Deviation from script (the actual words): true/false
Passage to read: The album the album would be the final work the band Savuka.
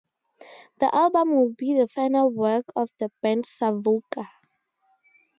true